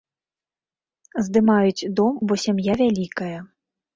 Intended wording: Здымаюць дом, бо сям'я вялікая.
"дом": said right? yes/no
yes